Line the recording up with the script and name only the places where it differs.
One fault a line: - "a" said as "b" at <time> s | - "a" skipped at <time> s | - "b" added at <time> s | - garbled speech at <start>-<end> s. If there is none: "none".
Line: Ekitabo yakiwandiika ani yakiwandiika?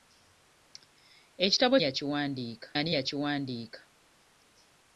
none